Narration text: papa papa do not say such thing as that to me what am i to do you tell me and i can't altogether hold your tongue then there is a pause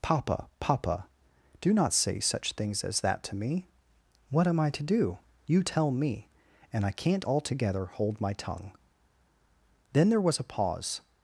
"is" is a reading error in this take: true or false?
true